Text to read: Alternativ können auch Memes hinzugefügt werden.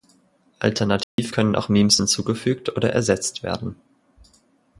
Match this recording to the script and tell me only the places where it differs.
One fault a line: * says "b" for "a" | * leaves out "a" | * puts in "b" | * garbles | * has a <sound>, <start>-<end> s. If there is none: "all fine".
* has a dropout, 1.0-1.2 s
* puts in "oder ersetzt"